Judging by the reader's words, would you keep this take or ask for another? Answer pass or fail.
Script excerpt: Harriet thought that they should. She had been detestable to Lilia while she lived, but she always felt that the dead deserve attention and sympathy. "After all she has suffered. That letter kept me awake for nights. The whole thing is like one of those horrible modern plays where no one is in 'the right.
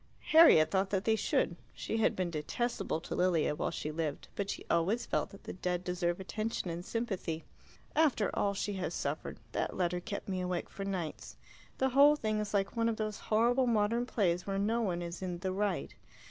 pass